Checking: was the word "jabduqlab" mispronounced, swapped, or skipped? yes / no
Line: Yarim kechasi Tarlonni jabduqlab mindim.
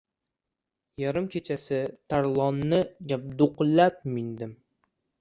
no